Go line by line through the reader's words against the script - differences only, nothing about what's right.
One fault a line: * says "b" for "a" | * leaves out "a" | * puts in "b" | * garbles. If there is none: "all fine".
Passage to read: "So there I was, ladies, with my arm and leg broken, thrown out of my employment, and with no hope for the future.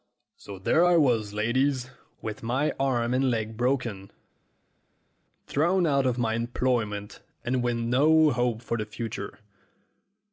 all fine